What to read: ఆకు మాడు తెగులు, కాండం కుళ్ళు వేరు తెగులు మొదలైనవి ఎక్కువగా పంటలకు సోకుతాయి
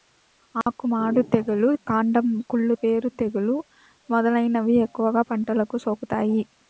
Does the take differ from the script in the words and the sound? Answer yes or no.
yes